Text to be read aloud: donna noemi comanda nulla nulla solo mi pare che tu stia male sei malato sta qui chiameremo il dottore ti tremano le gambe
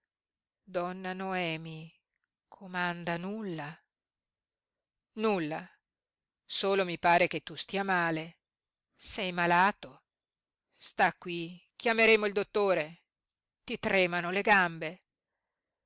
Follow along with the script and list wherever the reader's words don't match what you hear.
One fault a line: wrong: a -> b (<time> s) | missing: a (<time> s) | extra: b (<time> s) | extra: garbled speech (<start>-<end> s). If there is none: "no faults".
no faults